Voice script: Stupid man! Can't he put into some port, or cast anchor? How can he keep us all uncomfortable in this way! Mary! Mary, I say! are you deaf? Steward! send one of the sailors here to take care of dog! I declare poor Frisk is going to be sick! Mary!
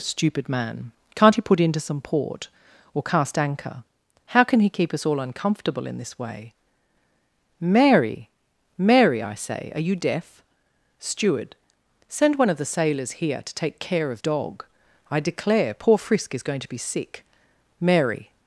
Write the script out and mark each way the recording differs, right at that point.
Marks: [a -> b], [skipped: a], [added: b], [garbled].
Stupid man! Can't he put into some port, or cast anchor? How can he keep us all uncomfortable in this way! Mary! Mary, I say! are you deaf? Steward! send one of the sailors here to take care of dog! I declare poor Frisk is going to be sick! Mary!